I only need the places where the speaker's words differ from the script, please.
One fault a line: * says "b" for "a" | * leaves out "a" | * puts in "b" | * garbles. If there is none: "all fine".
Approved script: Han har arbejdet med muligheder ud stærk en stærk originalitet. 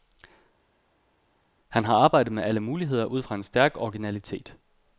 * puts in "alle"
* says "fra" for "stærk"